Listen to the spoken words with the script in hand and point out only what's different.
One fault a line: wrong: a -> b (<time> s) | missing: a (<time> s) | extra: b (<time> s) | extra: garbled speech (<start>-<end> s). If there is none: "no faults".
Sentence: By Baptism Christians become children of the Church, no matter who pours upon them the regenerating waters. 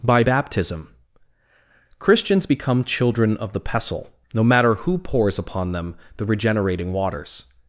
wrong: Church -> Pestle (3.6 s)